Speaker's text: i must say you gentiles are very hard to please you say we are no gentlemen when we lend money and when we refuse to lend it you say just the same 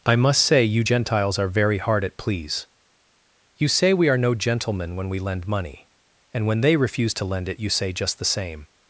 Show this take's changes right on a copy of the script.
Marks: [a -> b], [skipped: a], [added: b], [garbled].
i must say you gentiles are very hard [to -> at] please you say we are no gentlemen when we lend money and when [we -> they] refuse to lend it you say just the same